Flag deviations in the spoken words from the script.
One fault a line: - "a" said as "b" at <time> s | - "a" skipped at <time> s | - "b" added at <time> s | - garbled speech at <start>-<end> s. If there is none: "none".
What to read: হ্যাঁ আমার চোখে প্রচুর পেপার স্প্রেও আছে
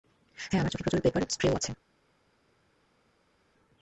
none